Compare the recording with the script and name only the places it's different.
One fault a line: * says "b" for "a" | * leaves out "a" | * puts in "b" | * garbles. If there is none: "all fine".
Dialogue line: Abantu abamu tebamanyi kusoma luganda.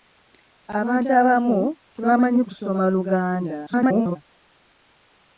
* garbles